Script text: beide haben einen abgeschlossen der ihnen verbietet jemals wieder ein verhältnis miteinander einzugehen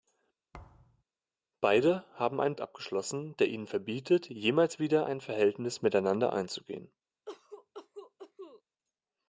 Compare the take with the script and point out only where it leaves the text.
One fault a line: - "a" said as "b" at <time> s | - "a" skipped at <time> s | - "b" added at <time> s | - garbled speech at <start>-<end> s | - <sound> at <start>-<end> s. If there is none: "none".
- thud at 0.5-1.0 s
- cough at 7.3-8.6 s